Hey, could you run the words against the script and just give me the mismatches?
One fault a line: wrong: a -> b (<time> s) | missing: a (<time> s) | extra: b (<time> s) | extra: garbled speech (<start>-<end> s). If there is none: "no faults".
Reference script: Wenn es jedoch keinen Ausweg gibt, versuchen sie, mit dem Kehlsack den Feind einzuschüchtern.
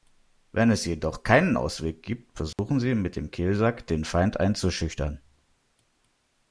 no faults